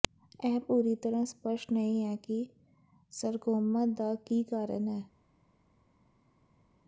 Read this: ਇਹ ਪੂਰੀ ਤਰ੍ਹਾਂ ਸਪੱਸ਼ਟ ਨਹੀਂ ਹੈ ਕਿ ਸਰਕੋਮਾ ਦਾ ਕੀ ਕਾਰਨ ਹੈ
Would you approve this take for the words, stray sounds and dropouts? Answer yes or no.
yes